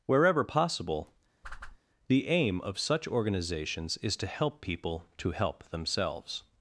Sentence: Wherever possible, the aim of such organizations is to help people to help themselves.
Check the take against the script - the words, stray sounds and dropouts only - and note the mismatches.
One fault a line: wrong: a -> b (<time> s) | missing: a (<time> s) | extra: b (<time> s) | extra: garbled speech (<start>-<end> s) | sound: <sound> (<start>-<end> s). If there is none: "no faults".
sound: whoosh (1.4-1.8 s)